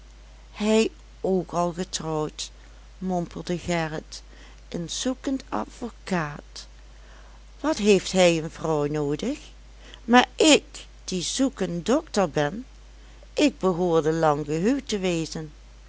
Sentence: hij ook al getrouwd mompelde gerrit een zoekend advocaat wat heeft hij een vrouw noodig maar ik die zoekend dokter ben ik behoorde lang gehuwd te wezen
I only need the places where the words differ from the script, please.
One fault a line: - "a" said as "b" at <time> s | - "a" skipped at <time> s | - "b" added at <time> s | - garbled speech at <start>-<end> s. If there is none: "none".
none